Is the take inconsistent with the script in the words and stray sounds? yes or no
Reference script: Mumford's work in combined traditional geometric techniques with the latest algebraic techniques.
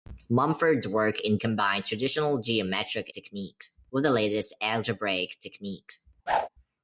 yes